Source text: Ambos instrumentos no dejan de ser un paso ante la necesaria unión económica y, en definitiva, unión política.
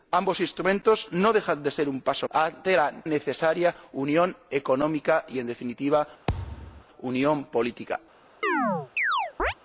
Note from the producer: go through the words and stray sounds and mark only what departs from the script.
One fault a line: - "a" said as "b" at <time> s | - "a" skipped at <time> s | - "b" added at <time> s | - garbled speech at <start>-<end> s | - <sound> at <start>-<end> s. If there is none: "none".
- thud at 6.3-6.8 s
- chirp at 8.4-9.5 s